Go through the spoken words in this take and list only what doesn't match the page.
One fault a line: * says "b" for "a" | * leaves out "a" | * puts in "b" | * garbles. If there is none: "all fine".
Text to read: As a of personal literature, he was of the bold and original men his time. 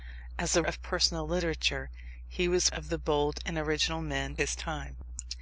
all fine